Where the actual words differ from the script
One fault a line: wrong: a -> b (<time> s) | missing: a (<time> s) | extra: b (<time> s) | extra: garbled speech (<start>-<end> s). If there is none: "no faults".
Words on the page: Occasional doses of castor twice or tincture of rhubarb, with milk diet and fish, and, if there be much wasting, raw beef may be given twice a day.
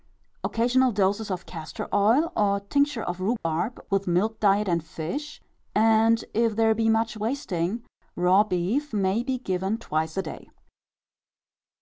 wrong: twice -> oil (1.9 s)